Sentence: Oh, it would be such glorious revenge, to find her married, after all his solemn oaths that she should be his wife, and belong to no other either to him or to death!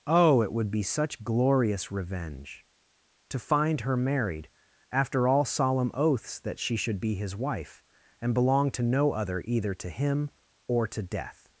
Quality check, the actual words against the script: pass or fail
fail